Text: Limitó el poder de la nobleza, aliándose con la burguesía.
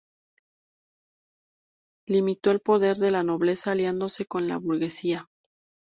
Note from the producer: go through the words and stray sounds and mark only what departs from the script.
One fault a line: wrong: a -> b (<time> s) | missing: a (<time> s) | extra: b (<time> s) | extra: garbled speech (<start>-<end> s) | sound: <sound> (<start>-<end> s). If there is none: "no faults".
no faults